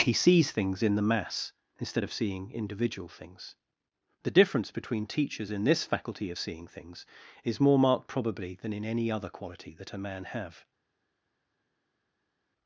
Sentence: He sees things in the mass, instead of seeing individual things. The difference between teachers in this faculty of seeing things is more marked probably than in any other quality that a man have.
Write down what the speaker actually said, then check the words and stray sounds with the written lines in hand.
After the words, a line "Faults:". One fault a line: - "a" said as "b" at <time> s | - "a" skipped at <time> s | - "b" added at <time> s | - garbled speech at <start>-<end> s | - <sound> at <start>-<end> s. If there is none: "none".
He sees things in the mass, instead of seeing individual things. The difference between teachers in this faculty of seeing things is more marked probably than in any other quality that a man have.
Faults:
none